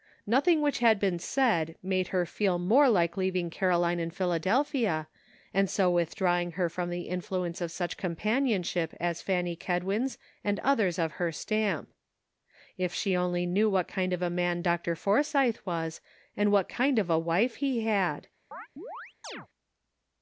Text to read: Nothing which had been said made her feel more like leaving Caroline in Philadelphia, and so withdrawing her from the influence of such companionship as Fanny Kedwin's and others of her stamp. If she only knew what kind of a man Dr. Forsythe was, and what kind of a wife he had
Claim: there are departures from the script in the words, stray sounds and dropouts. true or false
true